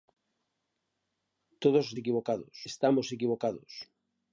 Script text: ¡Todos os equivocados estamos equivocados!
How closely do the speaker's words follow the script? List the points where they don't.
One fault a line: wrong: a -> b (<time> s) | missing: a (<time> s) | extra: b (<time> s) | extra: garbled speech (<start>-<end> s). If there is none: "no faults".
no faults